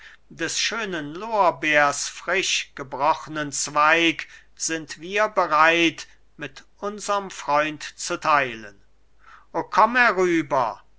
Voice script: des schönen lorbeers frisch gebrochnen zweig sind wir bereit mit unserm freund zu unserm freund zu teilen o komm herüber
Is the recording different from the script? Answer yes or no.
yes